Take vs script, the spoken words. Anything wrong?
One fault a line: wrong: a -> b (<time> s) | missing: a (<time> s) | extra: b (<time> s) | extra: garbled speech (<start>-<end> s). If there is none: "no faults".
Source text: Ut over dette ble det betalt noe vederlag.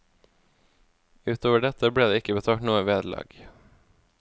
extra: ikke (2.2 s)